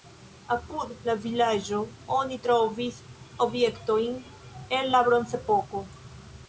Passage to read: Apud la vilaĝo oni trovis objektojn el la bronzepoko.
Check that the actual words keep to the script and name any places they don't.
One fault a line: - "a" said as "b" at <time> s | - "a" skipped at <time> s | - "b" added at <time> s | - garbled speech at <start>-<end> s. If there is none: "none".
none